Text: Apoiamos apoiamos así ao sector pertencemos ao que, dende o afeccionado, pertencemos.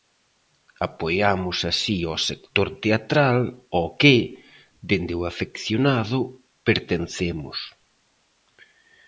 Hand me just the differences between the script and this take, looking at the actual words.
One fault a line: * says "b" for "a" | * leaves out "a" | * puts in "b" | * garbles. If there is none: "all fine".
* leaves out "apoiamos"
* says "teatral" for "pertencemos"